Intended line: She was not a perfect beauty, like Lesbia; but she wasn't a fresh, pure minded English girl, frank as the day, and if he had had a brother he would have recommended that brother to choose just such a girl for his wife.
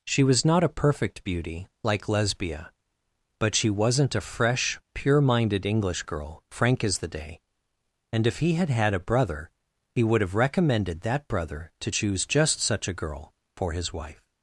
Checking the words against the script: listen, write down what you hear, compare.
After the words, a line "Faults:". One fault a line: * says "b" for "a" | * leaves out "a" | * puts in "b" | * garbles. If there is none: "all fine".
She was not a perfect beauty, like Lesbia; but she wasn't a fresh, pure minded English girl, frank as the day, and if he had had a brother he would have recommended that brother to choose just such a girl for his wife.
Faults:
all fine